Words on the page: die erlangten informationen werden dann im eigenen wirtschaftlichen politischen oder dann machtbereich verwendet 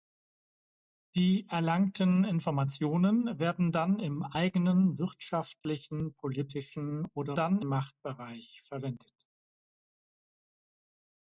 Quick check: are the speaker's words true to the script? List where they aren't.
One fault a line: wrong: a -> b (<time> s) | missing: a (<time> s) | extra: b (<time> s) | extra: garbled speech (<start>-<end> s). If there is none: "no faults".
no faults